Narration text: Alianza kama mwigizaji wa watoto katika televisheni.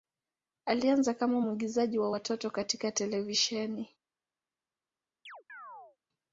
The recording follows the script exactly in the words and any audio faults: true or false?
false